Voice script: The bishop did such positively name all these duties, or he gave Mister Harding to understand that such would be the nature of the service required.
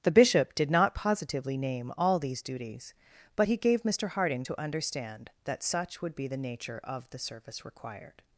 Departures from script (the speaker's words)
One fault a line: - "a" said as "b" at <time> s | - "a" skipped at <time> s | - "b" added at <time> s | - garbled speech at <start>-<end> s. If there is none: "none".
- "such" said as "not" at 0.7 s
- "or" said as "but" at 3.3 s